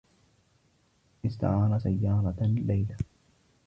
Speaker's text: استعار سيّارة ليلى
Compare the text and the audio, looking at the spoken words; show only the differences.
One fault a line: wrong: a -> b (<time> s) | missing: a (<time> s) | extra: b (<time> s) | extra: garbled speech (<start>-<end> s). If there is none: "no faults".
no faults